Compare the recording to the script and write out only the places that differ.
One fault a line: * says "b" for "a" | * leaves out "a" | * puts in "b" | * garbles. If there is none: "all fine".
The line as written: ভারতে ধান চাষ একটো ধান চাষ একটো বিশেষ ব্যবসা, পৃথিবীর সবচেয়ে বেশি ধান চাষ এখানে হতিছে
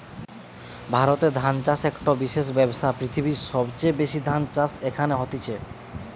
* leaves out "ধান চাষ একটো"